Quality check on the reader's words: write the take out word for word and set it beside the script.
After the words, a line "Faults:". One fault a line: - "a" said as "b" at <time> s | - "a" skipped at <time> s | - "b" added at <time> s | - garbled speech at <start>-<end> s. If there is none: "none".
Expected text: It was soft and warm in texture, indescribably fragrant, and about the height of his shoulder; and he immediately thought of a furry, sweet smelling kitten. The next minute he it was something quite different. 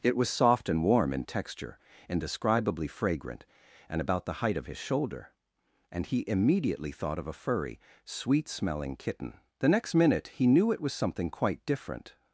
It was soft and warm in texture, indescribably fragrant, and about the height of his shoulder; and he immediately thought of a furry, sweet smelling kitten. The next minute he knew it was something quite different.
Faults:
- "knew" added at 10.5 s